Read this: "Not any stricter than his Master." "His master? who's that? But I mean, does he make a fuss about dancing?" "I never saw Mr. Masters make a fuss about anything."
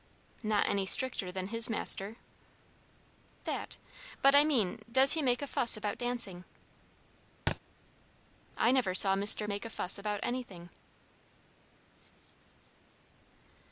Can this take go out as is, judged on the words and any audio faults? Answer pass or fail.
fail